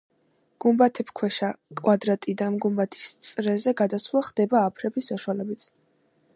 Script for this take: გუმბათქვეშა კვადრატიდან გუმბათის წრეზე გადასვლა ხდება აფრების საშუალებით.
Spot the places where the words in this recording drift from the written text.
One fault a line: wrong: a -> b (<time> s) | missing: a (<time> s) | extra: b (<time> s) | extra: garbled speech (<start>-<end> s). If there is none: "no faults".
no faults